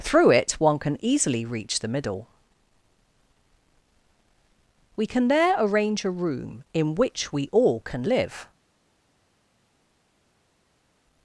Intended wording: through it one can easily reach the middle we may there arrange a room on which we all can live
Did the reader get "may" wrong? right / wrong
wrong